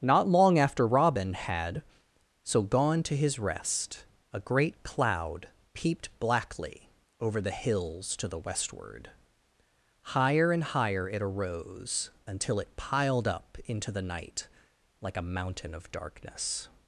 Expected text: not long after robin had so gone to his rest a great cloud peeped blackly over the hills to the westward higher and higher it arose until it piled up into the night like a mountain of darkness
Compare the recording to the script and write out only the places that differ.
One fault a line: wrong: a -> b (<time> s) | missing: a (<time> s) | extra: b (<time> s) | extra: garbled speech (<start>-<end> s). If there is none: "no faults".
no faults